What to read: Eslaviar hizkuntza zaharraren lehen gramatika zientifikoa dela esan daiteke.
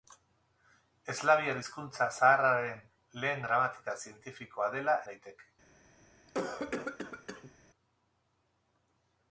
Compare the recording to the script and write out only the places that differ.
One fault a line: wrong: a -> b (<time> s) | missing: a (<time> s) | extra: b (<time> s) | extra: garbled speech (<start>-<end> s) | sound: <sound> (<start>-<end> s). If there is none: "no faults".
missing: esan (4.9 s)
sound: cough (6.3-7.5 s)